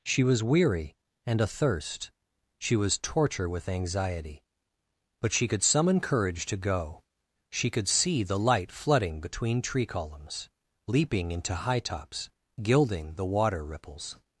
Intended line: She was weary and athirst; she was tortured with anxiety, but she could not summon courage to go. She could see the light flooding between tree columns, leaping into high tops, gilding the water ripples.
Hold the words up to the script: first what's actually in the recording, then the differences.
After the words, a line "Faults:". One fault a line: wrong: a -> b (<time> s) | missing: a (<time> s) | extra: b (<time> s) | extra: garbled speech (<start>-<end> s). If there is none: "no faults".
She was weary and athirst; she was torture with anxiety, but she could summon courage to go. She could see the light flooding between tree columns, leaping into high tops, gilding the water ripples.
Faults:
wrong: tortured -> torture (3.0 s)
missing: not (5.6 s)